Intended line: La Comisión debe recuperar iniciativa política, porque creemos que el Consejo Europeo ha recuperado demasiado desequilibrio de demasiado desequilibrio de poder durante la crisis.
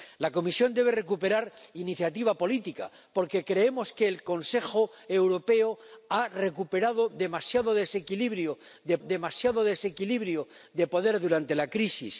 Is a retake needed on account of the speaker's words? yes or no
no